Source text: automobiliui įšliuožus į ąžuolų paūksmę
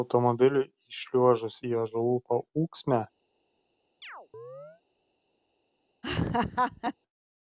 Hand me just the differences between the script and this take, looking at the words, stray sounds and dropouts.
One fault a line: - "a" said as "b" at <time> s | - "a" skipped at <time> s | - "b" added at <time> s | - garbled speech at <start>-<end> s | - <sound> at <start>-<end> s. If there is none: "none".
- chirp at 4.0-4.8 s
- laugh at 6.0-6.9 s